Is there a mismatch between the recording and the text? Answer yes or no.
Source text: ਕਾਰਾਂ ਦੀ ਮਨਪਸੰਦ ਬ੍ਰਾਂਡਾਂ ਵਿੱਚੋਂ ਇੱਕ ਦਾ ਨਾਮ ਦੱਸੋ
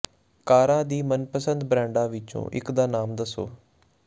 no